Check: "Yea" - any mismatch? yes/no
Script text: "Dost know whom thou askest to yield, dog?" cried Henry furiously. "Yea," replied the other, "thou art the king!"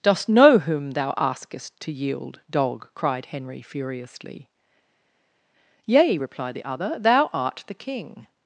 no